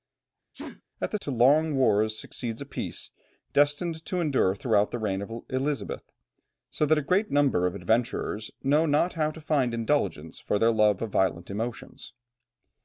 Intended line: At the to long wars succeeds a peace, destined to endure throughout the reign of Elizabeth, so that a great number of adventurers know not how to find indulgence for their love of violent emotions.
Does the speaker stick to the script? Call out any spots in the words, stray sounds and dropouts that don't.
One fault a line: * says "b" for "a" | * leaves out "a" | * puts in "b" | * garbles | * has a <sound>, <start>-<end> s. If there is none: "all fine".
* has a sneeze, 0.5-0.8 s